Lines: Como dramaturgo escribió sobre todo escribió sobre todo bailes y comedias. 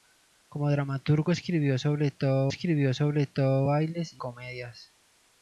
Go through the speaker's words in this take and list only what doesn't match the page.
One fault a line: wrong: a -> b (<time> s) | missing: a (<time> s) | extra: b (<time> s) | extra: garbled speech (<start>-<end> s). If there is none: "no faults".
no faults